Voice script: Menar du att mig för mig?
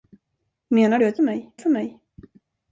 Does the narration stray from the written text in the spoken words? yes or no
no